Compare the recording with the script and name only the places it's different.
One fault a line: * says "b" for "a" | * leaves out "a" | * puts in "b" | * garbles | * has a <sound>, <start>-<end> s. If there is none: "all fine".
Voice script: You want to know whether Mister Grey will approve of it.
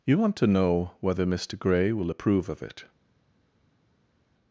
all fine